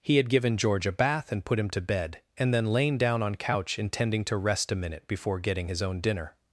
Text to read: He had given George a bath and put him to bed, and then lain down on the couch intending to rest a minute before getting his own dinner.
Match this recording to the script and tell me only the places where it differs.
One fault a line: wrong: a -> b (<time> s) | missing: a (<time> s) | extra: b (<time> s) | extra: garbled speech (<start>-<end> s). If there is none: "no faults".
missing: the (3.4 s)